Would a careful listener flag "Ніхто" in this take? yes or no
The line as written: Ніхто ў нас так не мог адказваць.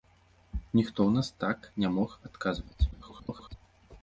no